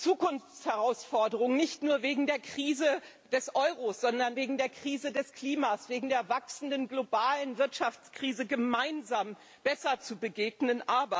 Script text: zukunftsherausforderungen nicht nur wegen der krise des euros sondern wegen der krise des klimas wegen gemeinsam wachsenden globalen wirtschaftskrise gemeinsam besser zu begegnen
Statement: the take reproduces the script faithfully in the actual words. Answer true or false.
false